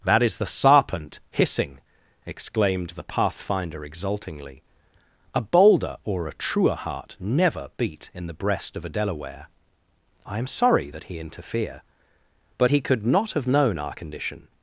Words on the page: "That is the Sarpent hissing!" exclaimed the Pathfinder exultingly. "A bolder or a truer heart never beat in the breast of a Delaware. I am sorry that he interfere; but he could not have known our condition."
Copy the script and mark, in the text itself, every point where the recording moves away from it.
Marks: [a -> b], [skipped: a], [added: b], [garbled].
"That is the Sarpent hissing!" exclaimed the Pathfinder exultingly. "A bolder or a truer heart never beat in the breast of a Delaware. I am sorry that he interfere; but he could not have known our condition."